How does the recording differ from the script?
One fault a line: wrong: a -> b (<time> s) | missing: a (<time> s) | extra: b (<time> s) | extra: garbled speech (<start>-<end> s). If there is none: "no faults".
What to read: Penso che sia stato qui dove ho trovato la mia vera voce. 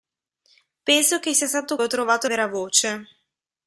missing: qui dove (1.8 s)
missing: la mia (2.3 s)